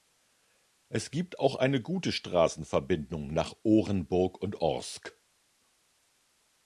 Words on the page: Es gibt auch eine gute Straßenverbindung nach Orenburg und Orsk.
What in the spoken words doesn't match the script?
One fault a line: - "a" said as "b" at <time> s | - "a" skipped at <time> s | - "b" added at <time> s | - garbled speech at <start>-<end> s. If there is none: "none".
none